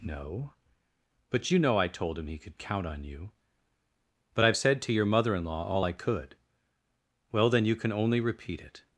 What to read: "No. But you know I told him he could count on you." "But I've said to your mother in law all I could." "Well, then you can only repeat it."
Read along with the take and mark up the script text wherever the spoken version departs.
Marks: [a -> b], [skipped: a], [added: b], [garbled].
"No. But you know I told him he could count on you." "But I've said to your mother in law all I could." "Well, then you can only repeat it."